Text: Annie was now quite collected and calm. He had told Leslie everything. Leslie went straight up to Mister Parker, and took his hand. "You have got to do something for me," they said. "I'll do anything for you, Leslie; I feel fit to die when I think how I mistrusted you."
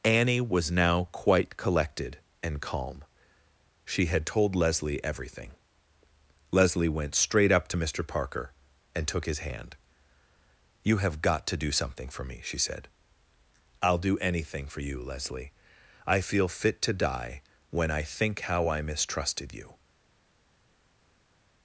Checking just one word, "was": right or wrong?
right